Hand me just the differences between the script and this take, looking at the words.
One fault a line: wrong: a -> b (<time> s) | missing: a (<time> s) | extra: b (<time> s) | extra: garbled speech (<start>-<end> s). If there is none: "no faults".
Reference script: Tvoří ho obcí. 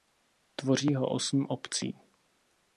extra: osm (1.1 s)